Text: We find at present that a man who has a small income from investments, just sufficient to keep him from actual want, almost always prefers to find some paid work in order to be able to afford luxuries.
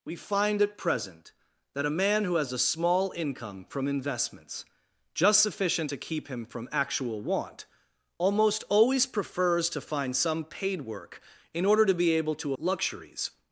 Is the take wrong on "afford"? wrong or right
wrong